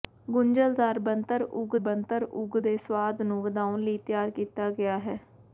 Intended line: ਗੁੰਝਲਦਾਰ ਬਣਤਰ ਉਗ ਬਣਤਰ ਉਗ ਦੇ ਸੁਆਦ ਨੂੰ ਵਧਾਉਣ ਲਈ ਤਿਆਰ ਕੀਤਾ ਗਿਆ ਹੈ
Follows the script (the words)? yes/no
yes